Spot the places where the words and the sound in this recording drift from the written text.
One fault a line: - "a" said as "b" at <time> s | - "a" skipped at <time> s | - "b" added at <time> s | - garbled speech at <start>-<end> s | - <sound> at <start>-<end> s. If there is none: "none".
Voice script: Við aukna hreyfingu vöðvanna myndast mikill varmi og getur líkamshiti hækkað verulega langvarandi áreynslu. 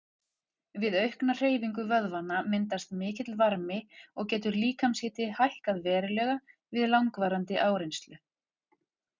- "við" added at 6.8 s